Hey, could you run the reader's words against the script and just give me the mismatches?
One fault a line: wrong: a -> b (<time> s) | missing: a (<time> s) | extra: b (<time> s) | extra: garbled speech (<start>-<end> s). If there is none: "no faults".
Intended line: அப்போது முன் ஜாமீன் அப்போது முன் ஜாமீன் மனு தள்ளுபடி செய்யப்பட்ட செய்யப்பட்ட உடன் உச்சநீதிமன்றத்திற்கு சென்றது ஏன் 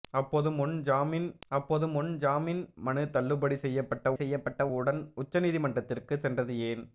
no faults